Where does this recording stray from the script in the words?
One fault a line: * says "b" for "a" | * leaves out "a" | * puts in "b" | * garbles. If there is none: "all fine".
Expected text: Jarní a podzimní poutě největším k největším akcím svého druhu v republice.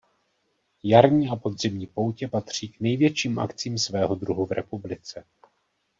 * says "patří" for "největším"